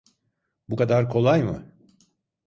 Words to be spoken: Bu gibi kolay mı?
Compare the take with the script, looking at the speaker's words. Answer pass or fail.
fail